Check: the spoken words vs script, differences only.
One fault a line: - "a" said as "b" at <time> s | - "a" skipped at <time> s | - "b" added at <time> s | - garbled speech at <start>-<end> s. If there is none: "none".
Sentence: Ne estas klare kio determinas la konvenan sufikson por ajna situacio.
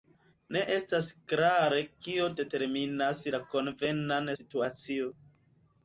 - "sufikson por ajna" skipped at 4.3 s